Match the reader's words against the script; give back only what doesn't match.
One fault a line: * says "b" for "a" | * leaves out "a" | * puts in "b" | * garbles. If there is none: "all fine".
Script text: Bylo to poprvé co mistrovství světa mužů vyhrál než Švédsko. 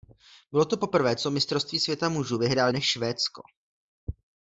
all fine